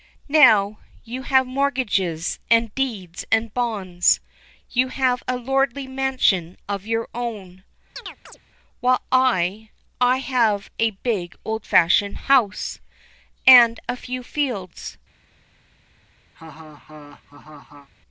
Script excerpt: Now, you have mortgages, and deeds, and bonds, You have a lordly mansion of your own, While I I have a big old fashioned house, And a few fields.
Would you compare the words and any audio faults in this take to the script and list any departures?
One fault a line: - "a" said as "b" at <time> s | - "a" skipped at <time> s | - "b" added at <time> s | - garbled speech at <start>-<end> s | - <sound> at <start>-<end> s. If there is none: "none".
- chirp at 8.0-8.4 s
- laugh at 16.3-17.9 s